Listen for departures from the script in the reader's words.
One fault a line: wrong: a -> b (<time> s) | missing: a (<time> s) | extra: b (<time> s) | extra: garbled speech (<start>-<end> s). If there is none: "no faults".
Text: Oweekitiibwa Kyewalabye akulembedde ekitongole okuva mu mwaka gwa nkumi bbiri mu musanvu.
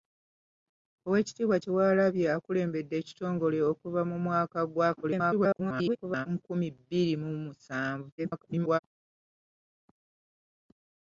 extra: garbled speech (5.0-6.3 s)
extra: garbled speech (8.2-8.8 s)